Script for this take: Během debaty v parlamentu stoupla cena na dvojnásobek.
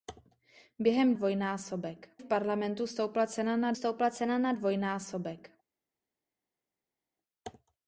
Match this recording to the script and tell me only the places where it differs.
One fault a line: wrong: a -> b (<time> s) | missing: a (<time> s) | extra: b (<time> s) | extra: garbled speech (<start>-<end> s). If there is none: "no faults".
wrong: debaty -> dvojnásobek (1.1 s)
extra: stoupla cena na (3.7 s)